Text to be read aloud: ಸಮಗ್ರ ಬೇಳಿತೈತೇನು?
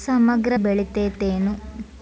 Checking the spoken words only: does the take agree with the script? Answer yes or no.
yes